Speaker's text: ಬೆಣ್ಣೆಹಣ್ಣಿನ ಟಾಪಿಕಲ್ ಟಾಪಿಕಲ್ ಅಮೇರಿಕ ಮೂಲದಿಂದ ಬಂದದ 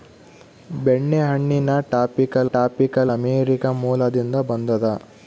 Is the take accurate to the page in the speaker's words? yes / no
yes